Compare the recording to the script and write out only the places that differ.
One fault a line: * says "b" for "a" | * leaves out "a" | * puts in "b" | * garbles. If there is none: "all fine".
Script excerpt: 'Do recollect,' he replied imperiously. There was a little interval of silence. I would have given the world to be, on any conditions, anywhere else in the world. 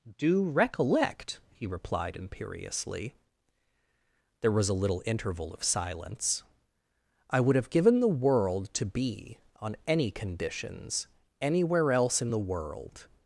all fine